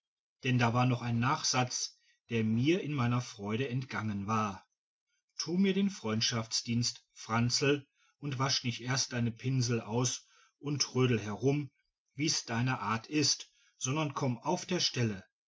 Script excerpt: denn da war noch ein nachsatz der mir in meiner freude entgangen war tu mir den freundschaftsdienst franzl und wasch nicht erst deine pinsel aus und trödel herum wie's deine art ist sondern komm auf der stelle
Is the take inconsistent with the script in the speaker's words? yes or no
no